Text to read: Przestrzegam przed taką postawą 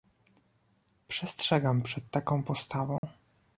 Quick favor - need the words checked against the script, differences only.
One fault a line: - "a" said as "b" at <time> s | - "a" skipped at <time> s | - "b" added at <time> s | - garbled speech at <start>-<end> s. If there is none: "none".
none